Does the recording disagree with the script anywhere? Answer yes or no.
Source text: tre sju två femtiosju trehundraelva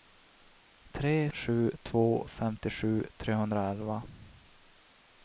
no